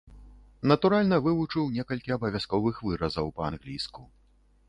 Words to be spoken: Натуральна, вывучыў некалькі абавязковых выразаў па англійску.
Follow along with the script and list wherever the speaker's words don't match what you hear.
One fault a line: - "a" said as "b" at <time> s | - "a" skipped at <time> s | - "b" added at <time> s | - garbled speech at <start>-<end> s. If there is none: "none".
none